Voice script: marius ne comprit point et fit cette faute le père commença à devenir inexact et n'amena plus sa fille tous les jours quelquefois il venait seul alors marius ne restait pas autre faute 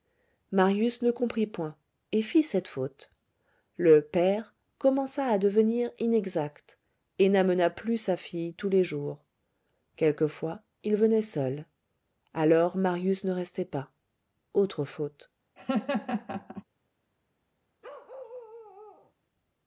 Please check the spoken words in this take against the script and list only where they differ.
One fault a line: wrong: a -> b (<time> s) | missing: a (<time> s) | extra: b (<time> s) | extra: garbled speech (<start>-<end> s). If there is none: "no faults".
no faults